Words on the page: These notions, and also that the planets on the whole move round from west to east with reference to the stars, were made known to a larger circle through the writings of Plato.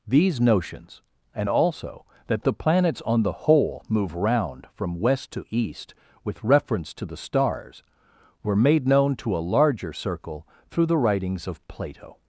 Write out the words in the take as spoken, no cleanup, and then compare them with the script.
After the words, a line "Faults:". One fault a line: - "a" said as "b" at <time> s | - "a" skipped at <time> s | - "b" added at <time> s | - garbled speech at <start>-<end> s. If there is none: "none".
These notions, and also that the planets on the whole move round from west to east with reference to the stars, were made known to a larger circle through the writings of Plato.
Faults:
none